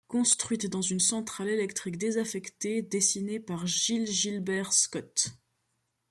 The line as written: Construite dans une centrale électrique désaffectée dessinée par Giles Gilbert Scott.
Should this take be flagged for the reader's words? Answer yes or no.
no